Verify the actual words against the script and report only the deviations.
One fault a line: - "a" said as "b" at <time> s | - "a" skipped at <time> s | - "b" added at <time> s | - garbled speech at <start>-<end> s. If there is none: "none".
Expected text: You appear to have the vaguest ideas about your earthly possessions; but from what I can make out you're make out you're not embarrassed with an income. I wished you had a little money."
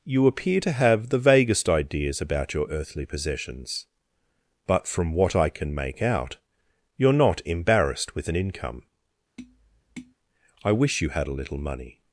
- "make out you're" skipped at 7.1 s
- "wished" said as "wish" at 10.7 s